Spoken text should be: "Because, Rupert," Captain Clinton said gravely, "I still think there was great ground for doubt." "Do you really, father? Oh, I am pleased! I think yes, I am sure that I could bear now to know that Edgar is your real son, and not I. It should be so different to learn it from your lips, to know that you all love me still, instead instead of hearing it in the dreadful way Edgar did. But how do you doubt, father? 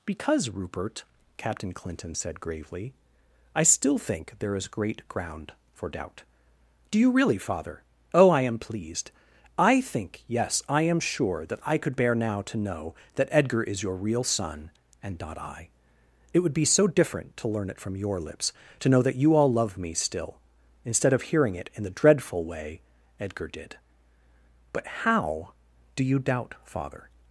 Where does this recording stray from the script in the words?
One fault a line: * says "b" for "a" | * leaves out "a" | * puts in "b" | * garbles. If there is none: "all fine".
* says "is" for "was"
* says "would" for "should"
* leaves out "instead"